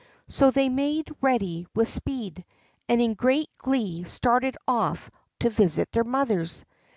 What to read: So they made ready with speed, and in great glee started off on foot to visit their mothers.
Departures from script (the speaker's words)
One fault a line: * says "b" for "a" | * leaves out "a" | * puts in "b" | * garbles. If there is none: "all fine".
* leaves out "on foot"